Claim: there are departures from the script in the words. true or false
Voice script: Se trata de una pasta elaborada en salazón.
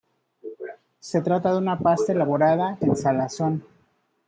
false